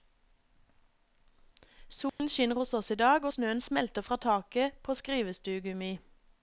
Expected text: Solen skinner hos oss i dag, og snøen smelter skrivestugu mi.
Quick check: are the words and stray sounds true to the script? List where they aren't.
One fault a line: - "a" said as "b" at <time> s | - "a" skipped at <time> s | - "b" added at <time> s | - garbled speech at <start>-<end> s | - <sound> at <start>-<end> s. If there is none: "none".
- dropout at 2.1-2.2 s
- "fra taket på" added at 4.0 s